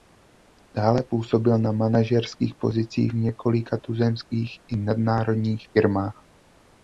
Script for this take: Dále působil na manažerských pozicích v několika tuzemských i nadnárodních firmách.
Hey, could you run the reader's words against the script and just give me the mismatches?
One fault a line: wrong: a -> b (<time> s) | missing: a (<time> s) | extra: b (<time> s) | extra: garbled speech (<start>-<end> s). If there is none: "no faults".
no faults